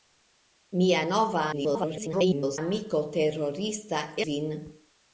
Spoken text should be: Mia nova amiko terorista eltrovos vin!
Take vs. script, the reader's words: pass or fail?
fail